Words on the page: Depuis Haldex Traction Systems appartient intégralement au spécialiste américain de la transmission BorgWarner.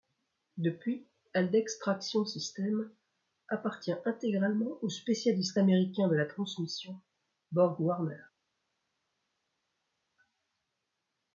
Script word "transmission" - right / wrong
right